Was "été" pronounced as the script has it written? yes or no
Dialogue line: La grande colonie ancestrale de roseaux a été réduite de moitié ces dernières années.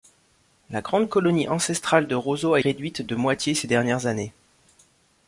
no